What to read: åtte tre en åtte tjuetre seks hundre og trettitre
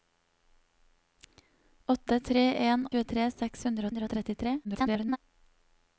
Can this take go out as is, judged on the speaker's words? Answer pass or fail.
fail